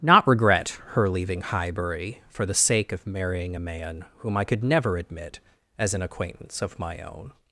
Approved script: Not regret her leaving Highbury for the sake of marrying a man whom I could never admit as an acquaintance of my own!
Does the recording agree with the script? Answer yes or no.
yes